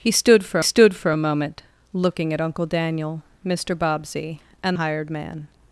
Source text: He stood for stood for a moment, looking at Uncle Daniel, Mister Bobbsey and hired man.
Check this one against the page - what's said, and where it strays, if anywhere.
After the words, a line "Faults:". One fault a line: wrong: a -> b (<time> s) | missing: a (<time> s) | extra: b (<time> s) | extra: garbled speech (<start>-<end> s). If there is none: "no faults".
He stood for stood for a moment, looking at Uncle Daniel, Mister Bobbsey and hired man.
Faults:
no faults